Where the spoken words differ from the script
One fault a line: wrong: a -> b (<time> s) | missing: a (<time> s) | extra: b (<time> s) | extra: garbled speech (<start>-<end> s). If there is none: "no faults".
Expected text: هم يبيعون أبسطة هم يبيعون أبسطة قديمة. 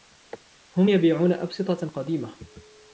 missing: هم يبيعون أبسطة (1.9 s)